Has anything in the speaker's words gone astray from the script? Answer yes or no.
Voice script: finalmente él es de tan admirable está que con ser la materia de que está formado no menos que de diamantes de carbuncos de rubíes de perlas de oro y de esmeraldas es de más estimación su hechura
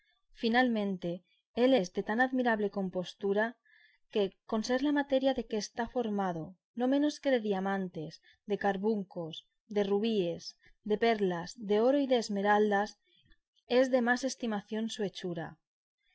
yes